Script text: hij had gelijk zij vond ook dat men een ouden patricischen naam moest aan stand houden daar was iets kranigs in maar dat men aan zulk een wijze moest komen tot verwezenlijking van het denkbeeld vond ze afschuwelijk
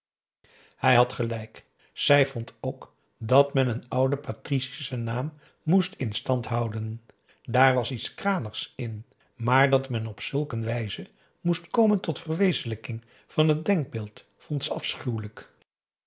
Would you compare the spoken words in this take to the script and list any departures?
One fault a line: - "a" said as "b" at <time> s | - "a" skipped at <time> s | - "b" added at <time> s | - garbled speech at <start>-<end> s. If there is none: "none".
- "aan" said as "in" at 6.0 s
- "aan" said as "op" at 10.1 s